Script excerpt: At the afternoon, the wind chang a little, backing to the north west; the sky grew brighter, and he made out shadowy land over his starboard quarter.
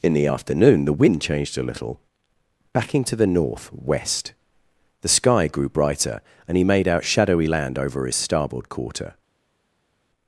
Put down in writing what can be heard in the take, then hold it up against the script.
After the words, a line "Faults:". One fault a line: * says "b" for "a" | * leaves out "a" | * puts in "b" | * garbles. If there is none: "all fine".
In the afternoon, the wind changed a little, backing to the north west; the sky grew brighter, and he made out shadowy land over his starboard quarter.
Faults:
* says "In" for "At"
* says "changed" for "chang"